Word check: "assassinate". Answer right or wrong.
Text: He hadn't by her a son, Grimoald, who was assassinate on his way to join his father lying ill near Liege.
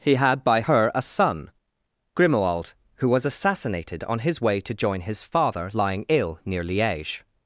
wrong